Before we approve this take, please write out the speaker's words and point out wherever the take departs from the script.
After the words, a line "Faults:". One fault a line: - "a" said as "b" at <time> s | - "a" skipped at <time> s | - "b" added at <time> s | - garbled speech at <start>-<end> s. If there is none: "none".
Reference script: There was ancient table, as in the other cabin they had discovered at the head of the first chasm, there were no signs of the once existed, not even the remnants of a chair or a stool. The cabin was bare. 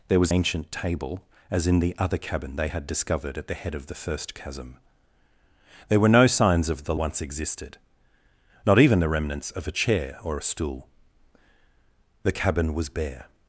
There was ancient table, as in the other cabin they had discovered at the head of the first chasm, there were no signs of the once existed, not even the remnants of a chair or a stool. The cabin was bare.
Faults:
none